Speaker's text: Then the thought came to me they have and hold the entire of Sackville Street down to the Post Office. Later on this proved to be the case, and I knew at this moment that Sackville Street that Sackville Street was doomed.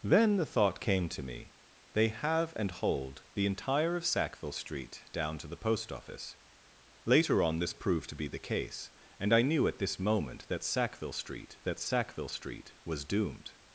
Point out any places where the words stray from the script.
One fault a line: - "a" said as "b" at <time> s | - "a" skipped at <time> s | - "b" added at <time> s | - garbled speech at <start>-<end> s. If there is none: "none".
none